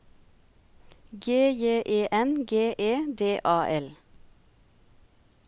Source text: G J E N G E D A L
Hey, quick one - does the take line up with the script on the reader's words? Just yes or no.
yes